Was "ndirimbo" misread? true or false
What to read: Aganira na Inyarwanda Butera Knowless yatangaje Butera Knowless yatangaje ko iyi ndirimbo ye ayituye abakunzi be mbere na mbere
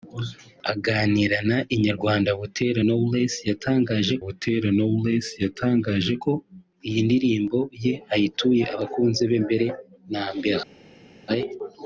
false